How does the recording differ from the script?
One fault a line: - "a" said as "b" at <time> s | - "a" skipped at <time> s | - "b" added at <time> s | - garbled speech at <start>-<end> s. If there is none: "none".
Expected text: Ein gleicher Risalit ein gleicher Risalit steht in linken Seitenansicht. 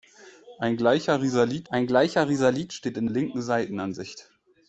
none